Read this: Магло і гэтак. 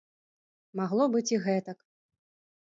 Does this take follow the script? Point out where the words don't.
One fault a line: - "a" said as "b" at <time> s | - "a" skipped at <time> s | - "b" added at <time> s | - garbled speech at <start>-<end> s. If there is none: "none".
- "быць" added at 1.2 s